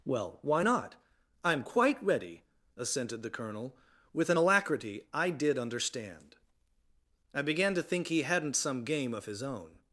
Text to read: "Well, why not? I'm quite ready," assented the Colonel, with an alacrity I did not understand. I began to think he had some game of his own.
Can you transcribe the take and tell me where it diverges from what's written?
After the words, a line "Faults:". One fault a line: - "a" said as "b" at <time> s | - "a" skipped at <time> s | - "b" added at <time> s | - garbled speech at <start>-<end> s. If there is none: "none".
"Well, why not? I'm quite ready," assented the Colonel, with an alacrity I did understand. I began to think he hadn't some game of his own.
Faults:
- "not" skipped at 5.6 s
- "had" said as "hadn't" at 8.2 s